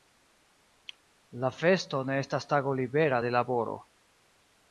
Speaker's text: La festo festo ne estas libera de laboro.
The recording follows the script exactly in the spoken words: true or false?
false